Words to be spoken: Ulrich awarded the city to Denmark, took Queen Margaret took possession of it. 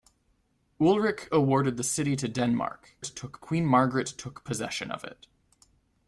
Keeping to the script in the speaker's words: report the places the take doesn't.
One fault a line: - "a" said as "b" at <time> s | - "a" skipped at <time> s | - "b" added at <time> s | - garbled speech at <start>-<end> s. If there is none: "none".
none